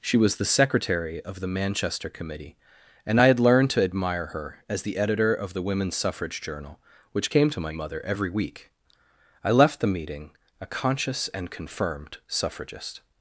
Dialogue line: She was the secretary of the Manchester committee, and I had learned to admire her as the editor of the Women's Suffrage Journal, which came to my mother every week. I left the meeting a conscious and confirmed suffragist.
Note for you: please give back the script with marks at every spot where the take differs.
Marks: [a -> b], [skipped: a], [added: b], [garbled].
She was the secretary of the Manchester committee, and I had learned to admire her as the editor of the Women's Suffrage Journal, which came to my mother every week. I left the meeting a conscious and confirmed suffragist.